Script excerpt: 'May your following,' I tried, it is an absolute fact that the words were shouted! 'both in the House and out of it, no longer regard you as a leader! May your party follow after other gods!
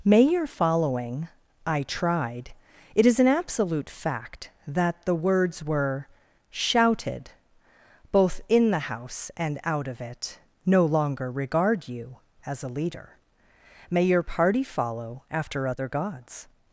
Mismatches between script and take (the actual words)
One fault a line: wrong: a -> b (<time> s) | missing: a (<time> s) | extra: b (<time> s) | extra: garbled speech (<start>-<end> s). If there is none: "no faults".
no faults